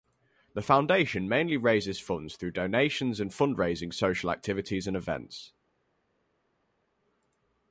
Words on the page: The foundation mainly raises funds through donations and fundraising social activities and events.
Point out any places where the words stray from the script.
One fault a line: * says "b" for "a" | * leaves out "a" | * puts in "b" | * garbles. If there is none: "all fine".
all fine